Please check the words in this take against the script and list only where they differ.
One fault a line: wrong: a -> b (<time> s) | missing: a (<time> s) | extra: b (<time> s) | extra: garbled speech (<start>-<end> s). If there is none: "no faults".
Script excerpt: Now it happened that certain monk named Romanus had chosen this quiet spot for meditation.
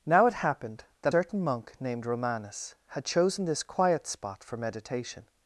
no faults